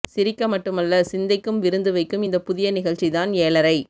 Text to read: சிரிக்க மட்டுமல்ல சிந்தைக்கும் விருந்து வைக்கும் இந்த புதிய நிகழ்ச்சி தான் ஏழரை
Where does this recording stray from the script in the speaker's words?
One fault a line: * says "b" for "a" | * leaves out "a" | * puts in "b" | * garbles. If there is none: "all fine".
all fine